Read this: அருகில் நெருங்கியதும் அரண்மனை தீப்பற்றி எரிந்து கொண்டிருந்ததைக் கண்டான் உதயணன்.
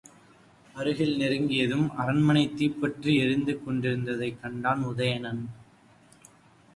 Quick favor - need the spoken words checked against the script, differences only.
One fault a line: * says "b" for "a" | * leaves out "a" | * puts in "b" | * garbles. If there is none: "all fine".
all fine